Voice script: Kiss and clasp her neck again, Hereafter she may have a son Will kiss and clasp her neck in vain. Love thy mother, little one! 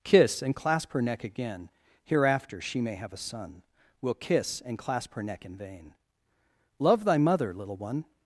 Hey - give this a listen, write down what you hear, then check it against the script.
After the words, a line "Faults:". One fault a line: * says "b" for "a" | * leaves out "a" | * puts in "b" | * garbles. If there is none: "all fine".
Kiss and clasp her neck again, Hereafter she may have a son Will kiss and clasp her neck in vain. Love thy mother, little one!
Faults:
all fine